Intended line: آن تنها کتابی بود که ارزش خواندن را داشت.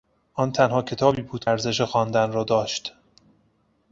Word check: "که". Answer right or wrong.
wrong